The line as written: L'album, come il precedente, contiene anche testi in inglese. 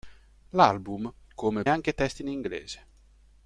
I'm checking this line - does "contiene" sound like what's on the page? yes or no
no